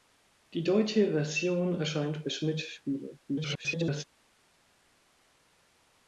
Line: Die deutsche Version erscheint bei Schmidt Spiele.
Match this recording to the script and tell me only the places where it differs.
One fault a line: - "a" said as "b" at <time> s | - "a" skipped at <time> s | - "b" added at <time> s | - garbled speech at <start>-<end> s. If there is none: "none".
- garbled speech at 3.3-4.0 s